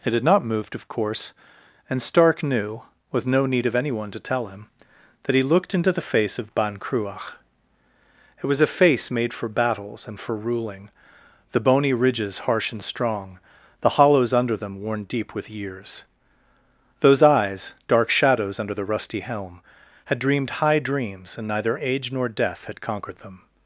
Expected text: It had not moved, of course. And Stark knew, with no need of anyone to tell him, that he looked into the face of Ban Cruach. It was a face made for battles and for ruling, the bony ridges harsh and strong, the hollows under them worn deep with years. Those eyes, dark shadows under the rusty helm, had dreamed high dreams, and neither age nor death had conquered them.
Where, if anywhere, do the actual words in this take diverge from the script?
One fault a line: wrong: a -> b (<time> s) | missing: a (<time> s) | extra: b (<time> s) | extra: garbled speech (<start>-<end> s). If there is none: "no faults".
no faults